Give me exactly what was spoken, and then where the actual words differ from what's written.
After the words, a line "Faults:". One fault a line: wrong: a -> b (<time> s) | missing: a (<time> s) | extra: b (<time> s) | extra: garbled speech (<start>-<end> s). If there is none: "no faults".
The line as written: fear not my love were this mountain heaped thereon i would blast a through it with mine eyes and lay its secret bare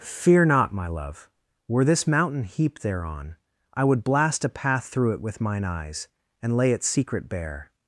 fear not my love were this mountain heaped thereon i would blast a path through it with mine eyes and lay its secret bare
Faults:
extra: path (4.5 s)